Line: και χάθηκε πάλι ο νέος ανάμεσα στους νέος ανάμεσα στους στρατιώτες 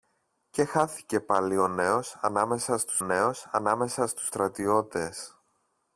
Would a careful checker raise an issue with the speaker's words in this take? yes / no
no